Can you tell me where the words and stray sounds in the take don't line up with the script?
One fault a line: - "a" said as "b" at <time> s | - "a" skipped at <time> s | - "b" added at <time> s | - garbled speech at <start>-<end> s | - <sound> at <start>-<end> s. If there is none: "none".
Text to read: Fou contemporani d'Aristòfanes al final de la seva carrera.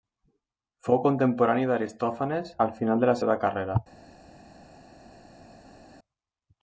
none